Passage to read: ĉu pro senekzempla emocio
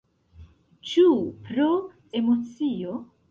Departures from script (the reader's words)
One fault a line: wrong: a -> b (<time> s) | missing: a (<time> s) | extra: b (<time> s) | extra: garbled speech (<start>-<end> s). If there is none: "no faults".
missing: senekzempla (1.7 s)